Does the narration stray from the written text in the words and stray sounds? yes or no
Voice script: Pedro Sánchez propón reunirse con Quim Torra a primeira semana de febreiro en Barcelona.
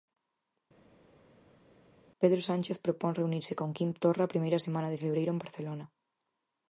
no